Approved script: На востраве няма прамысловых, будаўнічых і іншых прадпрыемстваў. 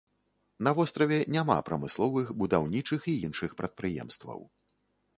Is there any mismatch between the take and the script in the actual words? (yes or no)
no